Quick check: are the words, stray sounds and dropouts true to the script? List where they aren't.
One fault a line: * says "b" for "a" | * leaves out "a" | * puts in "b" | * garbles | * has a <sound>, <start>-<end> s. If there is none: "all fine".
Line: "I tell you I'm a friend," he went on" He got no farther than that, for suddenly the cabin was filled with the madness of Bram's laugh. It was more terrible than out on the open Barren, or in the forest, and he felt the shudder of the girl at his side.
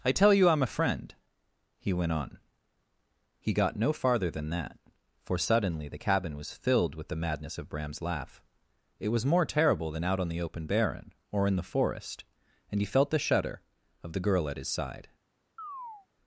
* has a chirp, 15.6-16.1 s